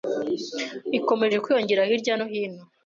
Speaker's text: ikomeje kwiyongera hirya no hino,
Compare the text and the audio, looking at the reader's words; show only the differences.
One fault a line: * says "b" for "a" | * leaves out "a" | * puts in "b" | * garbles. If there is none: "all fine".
all fine